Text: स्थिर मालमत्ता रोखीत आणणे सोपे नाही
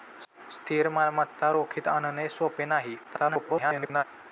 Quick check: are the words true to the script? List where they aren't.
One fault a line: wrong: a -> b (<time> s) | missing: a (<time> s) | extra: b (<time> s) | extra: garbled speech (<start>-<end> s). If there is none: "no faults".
extra: garbled speech (3.0-4.0 s)